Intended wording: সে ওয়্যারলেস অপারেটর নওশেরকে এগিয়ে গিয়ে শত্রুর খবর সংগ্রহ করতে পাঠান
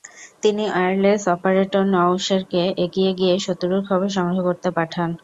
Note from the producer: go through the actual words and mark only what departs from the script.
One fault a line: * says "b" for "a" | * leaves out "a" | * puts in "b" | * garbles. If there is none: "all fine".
* says "তিনি" for "সে"